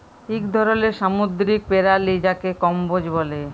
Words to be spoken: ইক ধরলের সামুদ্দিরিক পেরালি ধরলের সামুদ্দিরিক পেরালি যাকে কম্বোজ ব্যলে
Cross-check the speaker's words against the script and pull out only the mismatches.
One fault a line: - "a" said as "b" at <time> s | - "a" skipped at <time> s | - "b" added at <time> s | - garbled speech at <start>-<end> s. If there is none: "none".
- "ধরলের সামুদ্দিরিক পেরালি" skipped at 2.1 s